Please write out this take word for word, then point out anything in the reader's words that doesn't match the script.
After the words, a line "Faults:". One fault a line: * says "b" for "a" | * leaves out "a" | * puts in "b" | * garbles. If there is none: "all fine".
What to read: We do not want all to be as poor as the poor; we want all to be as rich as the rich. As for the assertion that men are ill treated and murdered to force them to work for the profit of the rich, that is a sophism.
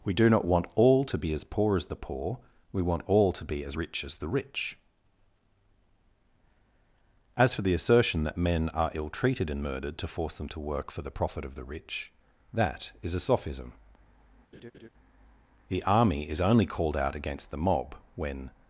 We do not want all to be as poor as the poor; we want all to be as rich as the rich. As for the assertion that men are ill treated and murdered to force them to work for the profit of the rich, that is a sophism. The army is only called out against the mob, when
Faults:
* puts in "The army is only called out against the mob when"